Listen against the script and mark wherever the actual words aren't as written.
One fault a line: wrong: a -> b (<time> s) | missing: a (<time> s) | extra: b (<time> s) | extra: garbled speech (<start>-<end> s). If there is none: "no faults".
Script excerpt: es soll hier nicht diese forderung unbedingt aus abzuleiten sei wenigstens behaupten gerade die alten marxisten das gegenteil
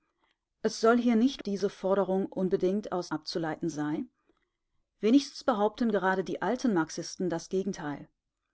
no faults